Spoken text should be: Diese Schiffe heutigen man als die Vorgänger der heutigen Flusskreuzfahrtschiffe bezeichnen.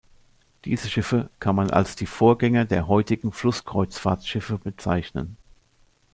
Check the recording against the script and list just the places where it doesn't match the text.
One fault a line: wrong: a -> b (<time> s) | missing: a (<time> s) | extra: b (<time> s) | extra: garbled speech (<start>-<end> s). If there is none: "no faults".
wrong: heutigen -> kann (1.4 s)